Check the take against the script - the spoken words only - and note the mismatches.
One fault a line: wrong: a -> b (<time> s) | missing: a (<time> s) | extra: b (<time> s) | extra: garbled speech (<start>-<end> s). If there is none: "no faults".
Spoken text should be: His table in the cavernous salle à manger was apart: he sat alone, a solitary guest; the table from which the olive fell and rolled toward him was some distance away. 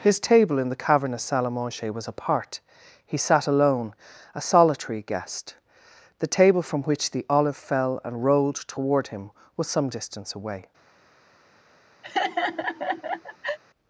no faults